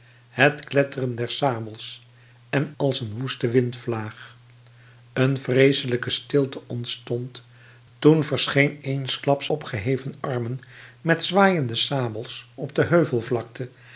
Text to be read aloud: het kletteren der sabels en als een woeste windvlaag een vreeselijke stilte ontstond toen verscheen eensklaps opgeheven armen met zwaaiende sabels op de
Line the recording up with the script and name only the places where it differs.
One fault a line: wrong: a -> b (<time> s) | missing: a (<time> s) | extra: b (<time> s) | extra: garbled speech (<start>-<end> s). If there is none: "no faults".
no faults